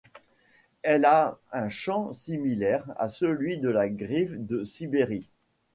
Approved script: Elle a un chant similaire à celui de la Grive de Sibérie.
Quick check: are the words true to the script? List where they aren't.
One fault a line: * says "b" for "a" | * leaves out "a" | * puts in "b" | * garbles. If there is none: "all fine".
all fine